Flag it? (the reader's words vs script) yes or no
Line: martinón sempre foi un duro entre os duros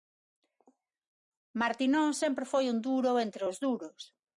no